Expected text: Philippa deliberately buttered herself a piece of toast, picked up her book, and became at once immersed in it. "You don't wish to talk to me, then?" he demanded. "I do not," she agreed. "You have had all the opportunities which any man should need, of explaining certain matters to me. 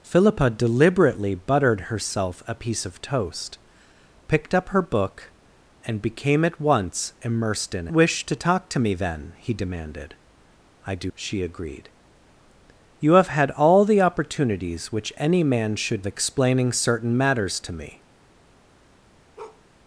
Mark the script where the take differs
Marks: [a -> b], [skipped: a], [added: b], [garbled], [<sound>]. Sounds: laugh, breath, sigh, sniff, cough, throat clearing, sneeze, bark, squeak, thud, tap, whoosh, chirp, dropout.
Philippa deliberately buttered herself a piece of toast, picked up her book, and became at once immersed in [skipped: it. "You don't] wish to talk to me, then?" he demanded. "I do [skipped: not,"] she agreed. "You have had all the opportunities which any man should [skipped: need, of] explaining certain matters to me. [bark]